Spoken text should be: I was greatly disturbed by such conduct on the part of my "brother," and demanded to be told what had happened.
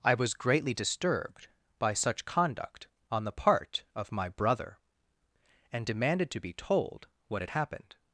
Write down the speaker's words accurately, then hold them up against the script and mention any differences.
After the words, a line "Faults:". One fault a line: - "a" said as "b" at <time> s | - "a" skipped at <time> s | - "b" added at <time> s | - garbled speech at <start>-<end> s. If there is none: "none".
I was greatly disturbed by such conduct on the part of my "brother," and demanded to be told what had happened.
Faults:
none